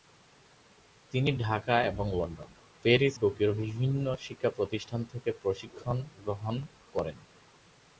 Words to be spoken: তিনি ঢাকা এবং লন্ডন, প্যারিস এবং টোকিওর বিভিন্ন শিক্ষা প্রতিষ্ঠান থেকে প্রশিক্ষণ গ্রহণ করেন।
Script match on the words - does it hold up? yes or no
no